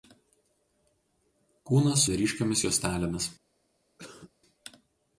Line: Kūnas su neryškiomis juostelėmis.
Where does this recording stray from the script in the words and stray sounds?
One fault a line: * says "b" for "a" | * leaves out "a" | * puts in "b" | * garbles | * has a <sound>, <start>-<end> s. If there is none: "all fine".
* leaves out "su"
* has a cough, 4.0-4.3 s